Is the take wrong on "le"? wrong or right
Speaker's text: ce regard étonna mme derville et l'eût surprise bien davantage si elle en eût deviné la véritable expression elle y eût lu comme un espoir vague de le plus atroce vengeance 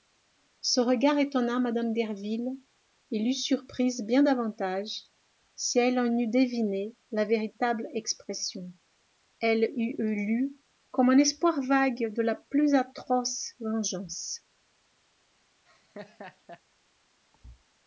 wrong